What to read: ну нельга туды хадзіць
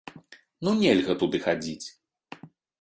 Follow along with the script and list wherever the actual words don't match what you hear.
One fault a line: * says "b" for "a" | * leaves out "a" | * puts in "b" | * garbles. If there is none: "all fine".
all fine